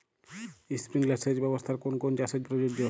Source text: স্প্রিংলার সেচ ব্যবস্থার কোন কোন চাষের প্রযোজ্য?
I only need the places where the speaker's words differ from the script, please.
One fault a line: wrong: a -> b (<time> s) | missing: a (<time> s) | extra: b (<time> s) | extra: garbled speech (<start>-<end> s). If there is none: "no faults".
no faults